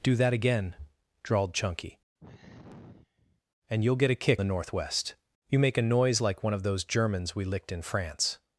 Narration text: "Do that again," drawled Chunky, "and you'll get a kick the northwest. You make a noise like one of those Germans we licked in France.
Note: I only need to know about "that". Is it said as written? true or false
true